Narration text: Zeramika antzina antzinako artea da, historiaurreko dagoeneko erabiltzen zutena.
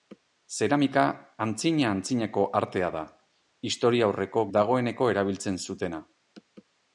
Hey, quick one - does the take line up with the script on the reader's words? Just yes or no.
yes